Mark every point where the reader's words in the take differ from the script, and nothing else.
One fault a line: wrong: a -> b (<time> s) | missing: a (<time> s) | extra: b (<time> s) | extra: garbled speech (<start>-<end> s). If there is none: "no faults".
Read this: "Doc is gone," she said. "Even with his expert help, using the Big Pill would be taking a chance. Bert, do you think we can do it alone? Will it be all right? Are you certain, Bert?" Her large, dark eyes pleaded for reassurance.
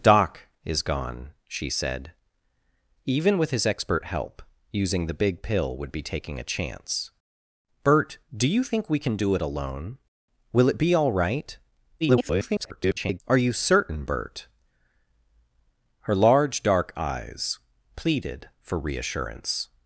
extra: garbled speech (12.0-13.2 s)